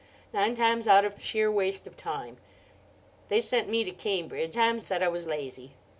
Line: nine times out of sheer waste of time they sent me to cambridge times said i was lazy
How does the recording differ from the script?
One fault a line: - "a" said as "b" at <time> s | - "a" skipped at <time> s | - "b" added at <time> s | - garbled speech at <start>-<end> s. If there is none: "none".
none